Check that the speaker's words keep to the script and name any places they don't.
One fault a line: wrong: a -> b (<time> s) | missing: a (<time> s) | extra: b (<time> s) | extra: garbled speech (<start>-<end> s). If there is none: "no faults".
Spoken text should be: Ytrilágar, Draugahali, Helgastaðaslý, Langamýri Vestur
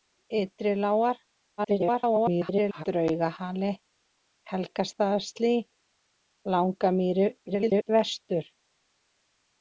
extra: garbled speech (1.6-2.8 s)
extra: garbled speech (7.5-7.9 s)